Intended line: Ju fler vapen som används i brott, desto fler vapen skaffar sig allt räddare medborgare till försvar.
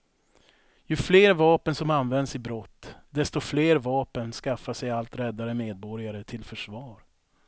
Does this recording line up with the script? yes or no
yes